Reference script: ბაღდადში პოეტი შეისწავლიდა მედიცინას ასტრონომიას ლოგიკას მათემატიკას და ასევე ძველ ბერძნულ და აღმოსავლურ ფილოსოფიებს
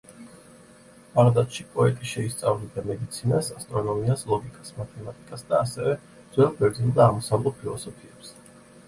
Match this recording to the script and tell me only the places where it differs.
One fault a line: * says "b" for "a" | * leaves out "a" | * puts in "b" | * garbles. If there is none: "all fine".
all fine